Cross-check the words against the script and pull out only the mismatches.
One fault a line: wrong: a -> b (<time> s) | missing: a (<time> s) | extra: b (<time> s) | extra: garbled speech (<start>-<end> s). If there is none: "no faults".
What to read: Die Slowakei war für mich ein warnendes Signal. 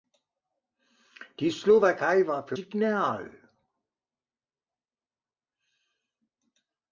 missing: mich ein warnendes (2.6 s)